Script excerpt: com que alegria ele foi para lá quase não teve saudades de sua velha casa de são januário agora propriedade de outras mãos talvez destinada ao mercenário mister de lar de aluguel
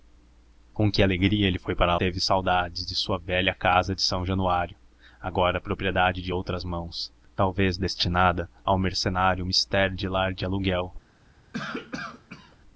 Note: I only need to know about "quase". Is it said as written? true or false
false